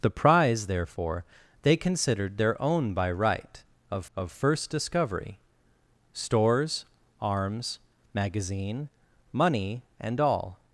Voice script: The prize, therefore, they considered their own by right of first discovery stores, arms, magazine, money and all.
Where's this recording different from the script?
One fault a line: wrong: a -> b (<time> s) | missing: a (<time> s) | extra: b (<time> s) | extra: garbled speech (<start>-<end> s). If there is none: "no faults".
extra: of (4.2 s)